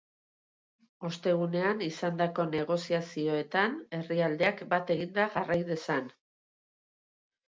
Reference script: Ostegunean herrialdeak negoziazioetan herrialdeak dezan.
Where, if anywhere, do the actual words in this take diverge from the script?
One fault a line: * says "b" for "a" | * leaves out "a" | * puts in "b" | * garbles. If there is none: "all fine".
* says "izandako" for "herrialdeak"
* puts in "bat eginda jarrai"